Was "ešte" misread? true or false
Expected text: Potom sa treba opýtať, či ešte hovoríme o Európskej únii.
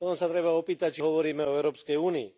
true